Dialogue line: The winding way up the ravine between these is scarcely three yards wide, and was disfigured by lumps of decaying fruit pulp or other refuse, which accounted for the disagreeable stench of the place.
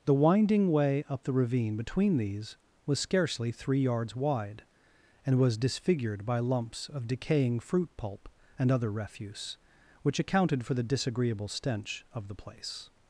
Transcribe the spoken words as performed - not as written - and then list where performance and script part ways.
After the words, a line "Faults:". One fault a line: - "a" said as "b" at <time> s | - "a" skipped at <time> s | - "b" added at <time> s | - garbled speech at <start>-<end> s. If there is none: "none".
The winding way up the ravine between these was scarcely three yards wide, and was disfigured by lumps of decaying fruit pulp and other refuse, which accounted for the disagreeable stench of the place.
Faults:
- "is" said as "was" at 2.9 s
- "or" said as "and" at 8.6 s